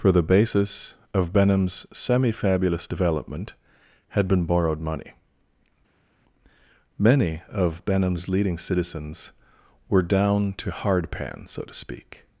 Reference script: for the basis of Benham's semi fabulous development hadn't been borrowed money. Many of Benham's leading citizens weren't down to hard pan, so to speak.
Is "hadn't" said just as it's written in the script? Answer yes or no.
no